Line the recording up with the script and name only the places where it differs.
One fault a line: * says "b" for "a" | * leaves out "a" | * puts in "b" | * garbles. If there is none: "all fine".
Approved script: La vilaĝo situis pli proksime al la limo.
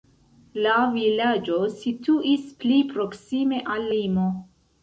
* leaves out "la"